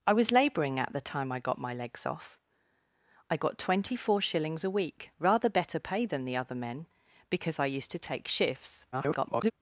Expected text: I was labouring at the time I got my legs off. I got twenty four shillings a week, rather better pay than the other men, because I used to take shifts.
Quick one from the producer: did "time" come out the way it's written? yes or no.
yes